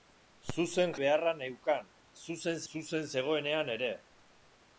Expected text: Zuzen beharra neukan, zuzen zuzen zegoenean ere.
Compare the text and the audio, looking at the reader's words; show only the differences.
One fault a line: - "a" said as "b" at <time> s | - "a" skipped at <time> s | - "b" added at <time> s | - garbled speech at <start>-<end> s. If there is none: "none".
none